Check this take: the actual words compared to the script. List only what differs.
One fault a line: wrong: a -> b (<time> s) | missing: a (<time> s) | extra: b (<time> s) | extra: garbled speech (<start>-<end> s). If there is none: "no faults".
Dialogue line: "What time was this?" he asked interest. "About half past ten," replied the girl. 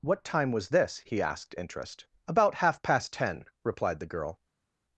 no faults